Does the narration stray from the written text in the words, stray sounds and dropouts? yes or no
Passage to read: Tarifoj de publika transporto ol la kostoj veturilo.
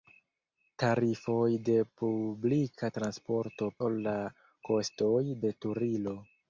no